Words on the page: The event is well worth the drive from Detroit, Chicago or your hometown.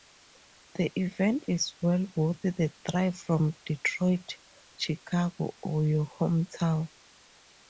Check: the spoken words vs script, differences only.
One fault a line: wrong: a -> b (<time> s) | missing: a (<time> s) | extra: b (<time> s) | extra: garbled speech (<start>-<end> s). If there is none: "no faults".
no faults